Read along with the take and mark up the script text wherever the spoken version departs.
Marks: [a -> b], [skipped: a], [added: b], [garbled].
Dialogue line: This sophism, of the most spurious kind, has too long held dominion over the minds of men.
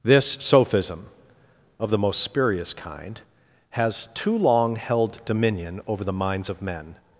This sophism, of the most spurious kind, has too long held dominion over the minds of men.